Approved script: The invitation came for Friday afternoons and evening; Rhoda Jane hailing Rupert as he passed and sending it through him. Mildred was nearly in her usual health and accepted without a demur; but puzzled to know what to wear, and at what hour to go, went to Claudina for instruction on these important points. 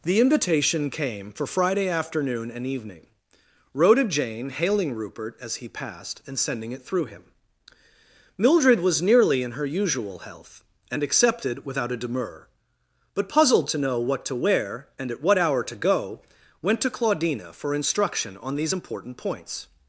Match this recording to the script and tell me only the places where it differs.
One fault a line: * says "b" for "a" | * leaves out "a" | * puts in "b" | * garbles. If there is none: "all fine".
* says "afternoon" for "afternoons"